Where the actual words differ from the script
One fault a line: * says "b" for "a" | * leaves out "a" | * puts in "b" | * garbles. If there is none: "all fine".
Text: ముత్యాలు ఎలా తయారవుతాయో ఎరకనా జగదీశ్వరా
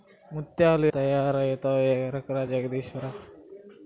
* leaves out "ఎలా"